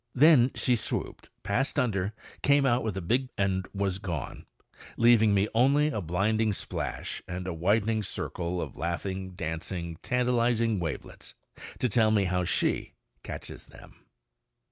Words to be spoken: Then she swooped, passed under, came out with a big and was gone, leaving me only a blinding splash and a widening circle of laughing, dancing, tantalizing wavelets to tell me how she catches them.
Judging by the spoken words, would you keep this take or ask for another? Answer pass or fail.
pass